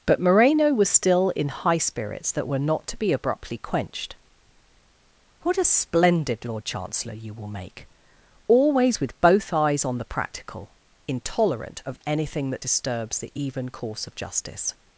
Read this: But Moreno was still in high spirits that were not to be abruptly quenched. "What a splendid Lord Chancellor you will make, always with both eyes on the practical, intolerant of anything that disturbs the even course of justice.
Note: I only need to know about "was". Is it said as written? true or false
true